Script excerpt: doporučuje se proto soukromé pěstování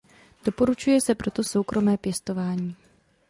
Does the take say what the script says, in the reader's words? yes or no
yes